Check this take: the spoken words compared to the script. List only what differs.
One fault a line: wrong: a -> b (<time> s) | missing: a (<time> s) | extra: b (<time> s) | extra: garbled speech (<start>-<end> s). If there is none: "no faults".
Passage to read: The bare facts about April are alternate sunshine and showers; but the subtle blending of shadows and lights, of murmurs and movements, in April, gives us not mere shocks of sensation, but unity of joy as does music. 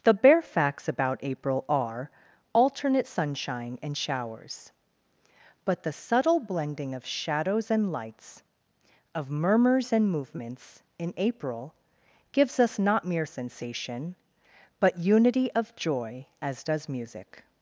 missing: shocks of (13.3 s)